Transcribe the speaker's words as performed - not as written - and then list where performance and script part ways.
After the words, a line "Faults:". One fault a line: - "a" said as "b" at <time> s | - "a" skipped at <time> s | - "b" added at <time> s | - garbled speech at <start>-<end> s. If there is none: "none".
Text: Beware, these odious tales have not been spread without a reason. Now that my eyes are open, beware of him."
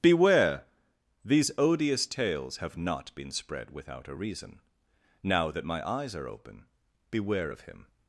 Beware, these odious tales have not been spread without a reason. Now that my eyes are open, beware of him."
Faults:
none